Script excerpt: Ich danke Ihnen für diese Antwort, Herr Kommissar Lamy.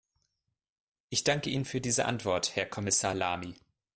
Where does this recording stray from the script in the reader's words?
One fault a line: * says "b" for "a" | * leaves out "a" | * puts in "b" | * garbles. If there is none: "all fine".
all fine